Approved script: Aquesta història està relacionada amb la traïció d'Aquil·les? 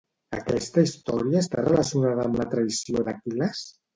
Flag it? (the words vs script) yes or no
no